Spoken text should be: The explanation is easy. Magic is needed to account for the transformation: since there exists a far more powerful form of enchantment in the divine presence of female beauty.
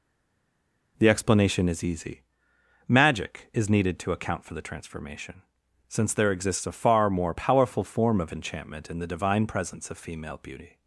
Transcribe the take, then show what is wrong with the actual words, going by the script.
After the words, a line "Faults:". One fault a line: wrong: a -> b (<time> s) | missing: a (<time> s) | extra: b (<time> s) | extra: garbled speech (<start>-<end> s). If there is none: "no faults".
The explanation is easy. Magic is needed to account for the transformation: since there exists a far more powerful form of enchantment in the divine presence of female beauty.
Faults:
no faults